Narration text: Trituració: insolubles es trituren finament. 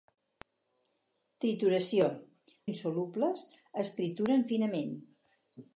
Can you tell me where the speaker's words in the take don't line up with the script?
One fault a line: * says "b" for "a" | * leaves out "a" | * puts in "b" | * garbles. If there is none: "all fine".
all fine